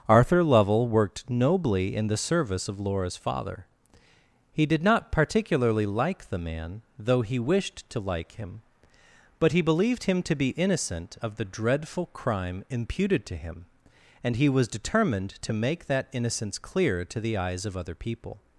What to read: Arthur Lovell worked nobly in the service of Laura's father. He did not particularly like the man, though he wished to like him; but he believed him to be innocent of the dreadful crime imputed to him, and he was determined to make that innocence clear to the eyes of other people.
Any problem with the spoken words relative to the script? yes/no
no